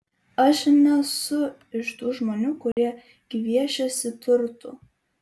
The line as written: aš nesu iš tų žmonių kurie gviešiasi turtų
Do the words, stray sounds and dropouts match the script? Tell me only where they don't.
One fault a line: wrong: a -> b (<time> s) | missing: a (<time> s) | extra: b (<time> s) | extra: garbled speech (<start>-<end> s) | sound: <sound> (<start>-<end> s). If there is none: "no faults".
sound: dropout (2.7-2.8 s)